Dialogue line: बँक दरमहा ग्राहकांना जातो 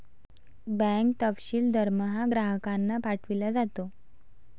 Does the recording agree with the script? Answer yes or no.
no